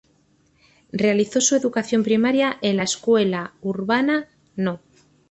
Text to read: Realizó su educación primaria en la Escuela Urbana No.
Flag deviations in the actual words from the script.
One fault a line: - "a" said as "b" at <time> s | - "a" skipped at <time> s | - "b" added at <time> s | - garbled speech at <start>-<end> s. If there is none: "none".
none